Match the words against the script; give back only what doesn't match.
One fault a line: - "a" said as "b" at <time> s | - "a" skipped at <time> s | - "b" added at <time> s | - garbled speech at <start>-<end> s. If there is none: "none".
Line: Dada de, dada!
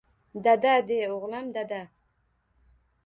- "o'g'lim" added at 1.2 s